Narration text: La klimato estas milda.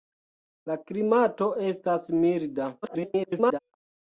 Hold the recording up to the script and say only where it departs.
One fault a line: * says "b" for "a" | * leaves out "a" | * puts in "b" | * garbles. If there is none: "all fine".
* garbles